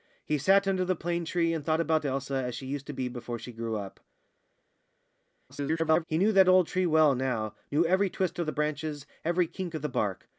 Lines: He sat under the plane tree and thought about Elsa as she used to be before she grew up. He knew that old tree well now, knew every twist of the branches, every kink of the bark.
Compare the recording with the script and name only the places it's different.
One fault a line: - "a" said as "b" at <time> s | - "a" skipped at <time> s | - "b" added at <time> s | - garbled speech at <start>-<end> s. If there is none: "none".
- garbled speech at 5.5-6.0 s